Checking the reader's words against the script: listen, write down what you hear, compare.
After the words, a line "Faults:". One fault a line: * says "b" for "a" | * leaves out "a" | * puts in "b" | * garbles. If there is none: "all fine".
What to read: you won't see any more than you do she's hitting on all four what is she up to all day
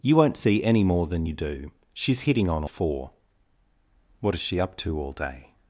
you won't see any more than you do she's hitting on four what is she up to all day
Faults:
* leaves out "all"